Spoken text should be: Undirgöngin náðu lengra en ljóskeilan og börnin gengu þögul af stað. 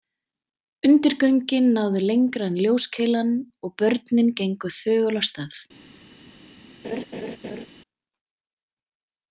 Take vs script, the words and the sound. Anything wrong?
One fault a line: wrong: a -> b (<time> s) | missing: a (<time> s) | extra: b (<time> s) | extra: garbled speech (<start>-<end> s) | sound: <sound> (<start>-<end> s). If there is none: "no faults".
sound: laugh (6.8-7.7 s)